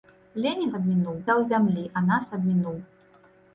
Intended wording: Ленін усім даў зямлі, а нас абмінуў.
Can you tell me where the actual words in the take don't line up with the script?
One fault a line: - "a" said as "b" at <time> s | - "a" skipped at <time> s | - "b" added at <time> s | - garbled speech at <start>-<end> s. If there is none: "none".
- "усім" said as "абмінуў" at 0.8 s